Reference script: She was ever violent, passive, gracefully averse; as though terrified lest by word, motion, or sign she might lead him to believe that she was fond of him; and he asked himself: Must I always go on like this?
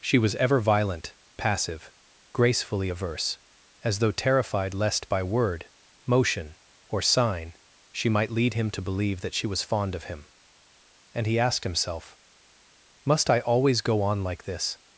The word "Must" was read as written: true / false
true